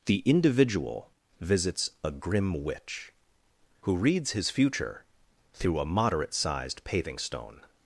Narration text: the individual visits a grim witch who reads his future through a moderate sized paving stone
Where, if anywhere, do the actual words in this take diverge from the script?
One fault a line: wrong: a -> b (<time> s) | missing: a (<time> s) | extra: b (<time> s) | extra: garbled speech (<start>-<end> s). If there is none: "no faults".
no faults